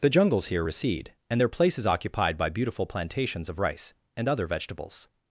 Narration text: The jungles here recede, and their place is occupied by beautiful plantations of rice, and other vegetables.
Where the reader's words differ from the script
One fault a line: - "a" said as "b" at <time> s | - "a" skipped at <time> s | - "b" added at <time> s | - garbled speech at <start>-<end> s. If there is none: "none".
none